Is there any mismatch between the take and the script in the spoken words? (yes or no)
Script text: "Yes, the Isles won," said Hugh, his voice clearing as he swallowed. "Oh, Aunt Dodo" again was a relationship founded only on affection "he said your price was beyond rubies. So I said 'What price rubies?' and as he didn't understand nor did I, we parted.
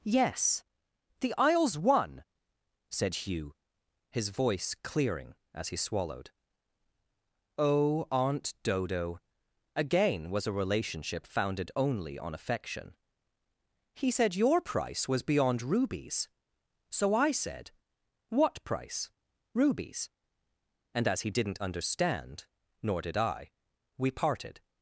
no